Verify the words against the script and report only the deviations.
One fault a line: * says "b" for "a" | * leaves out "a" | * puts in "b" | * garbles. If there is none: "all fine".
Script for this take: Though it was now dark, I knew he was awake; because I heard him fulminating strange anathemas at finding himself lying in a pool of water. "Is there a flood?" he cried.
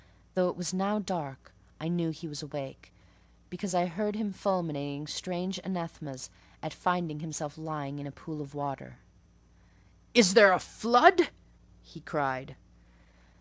all fine